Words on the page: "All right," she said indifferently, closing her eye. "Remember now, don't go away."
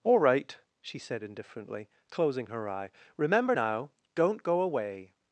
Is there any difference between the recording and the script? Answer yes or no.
no